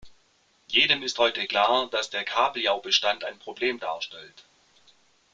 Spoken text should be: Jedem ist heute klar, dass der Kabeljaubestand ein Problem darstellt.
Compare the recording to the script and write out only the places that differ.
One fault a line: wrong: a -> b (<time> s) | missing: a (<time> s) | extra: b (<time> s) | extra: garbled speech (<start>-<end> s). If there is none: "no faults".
no faults